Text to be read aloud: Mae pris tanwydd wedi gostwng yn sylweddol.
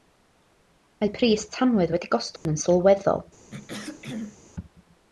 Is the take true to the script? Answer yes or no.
yes